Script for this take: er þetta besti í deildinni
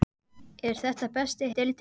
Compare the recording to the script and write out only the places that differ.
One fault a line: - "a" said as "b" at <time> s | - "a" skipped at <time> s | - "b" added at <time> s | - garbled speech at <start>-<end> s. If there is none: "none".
none